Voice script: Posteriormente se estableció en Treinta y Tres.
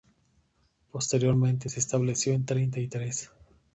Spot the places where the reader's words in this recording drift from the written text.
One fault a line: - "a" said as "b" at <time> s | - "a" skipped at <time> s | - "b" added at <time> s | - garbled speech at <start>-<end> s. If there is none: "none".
none